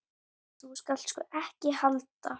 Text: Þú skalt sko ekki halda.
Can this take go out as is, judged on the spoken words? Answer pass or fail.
pass